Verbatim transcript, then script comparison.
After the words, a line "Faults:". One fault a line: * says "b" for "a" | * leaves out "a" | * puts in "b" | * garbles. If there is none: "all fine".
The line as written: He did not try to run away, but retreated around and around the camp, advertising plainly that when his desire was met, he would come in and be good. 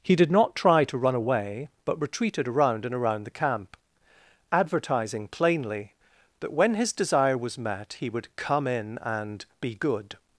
He did not try to run away, but retreated around and around the camp, advertising plainly that when his desire was met, he would come in and be good.
Faults:
all fine